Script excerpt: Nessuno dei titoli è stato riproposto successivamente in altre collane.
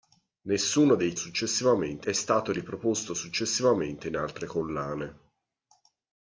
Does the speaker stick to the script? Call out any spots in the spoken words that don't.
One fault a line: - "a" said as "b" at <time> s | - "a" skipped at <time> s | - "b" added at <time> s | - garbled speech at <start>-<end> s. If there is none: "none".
- "titoli" said as "successivamente" at 1.1 s